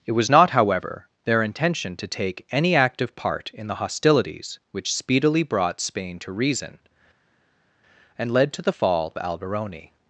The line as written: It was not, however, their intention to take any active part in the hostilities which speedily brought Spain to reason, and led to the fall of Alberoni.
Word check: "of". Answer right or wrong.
wrong